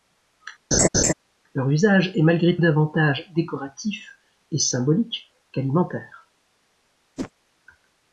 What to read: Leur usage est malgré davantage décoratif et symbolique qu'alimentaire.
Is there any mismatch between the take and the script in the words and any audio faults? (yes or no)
yes